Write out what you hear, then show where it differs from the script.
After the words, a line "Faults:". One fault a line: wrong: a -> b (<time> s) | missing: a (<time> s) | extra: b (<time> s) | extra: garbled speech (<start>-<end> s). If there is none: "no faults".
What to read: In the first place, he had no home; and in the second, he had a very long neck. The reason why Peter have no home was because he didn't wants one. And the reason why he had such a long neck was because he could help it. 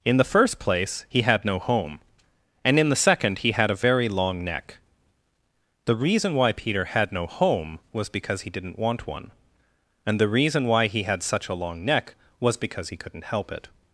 In the first place, he had no home; and in the second, he had a very long neck. The reason why Peter had no home was because he didn't want one. And the reason why he had such a long neck was because he couldn't help it.
Faults:
wrong: have -> had (6.9 s)
wrong: wants -> want (8.8 s)
wrong: could -> couldn't (13.0 s)